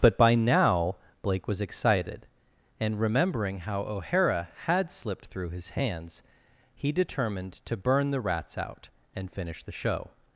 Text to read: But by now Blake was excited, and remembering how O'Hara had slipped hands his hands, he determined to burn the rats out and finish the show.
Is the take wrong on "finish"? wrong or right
right